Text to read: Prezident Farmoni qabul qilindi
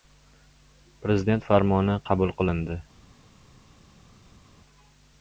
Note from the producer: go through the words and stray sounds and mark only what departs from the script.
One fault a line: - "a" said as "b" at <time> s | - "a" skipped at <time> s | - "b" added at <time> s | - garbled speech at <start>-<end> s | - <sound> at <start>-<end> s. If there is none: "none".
none